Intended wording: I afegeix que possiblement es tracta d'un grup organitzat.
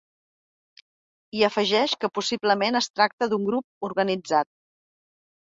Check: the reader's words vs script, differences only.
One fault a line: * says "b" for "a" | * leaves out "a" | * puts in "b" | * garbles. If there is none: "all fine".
all fine